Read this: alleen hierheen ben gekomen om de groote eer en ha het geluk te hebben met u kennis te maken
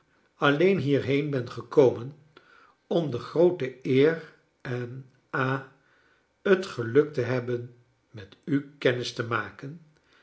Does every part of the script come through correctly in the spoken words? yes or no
yes